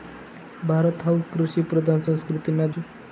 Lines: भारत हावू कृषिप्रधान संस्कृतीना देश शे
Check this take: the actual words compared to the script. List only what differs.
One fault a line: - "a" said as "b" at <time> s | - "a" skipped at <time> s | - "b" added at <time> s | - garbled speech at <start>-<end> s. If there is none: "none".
- "देश" skipped at 2.7 s